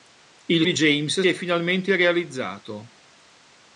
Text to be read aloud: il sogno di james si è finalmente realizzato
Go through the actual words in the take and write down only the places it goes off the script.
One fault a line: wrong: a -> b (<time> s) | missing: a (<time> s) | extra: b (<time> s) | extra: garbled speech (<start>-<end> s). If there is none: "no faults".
missing: sogno (0.7 s)
missing: si (1.2 s)